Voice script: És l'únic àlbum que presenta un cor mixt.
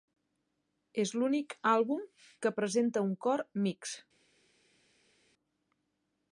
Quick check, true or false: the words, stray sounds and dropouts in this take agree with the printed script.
true